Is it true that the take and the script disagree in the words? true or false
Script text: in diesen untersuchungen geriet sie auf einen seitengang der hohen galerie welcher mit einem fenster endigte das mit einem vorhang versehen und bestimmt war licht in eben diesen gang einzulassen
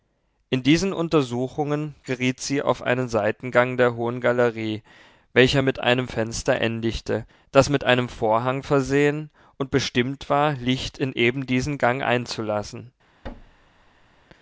false